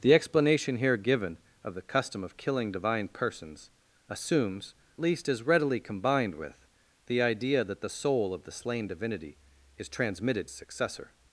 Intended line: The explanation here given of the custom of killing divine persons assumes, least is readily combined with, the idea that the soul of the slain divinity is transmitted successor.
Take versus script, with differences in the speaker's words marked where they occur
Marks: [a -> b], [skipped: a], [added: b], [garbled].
The explanation here given of the custom of killing divine persons assumes, least is readily combined with, the idea that the soul of the slain divinity is transmitted successor.